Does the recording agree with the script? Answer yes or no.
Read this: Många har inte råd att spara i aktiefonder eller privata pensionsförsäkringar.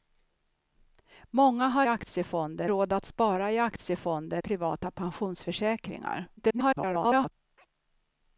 no